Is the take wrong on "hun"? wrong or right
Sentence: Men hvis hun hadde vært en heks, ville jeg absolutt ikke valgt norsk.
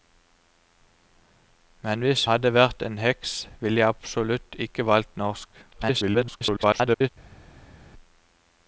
wrong